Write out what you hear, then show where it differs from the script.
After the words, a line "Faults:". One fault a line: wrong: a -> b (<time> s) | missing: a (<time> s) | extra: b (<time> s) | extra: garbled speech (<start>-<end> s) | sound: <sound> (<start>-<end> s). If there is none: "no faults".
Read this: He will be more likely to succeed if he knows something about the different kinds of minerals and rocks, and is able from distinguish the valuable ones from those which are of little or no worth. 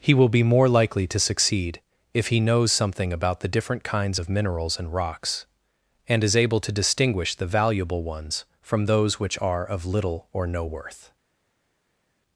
He will be more likely to succeed if he knows something about the different kinds of minerals and rocks, and is able to distinguish the valuable ones from those which are of little or no worth.
Faults:
wrong: from -> to (6.6 s)